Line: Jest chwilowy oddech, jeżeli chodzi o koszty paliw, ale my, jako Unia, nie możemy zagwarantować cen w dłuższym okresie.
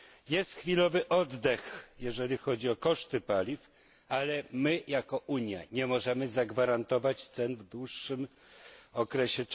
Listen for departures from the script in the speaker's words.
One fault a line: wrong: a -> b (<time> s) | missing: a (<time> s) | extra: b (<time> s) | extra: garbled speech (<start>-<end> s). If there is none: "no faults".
no faults